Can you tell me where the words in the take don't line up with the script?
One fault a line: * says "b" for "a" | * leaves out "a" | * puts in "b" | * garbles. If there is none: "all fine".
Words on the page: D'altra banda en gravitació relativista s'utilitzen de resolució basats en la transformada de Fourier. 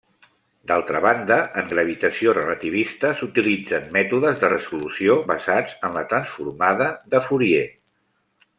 * puts in "mètodes"